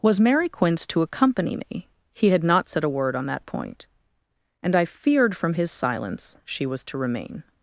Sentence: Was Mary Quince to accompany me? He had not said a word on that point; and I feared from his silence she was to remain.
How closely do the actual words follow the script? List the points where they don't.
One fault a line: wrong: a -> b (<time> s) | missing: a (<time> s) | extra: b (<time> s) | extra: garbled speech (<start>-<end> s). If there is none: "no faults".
no faults